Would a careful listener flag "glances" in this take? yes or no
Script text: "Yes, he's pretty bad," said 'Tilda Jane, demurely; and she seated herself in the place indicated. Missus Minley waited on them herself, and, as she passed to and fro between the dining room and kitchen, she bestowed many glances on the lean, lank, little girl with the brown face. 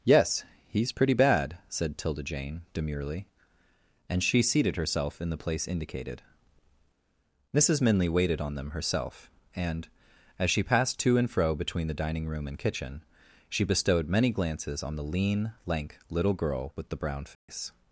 no